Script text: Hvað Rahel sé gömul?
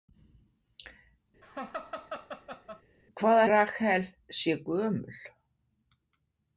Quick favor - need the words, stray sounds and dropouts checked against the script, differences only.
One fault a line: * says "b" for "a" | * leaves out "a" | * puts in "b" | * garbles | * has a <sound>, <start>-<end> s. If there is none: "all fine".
* has a laugh, 1.4-2.8 s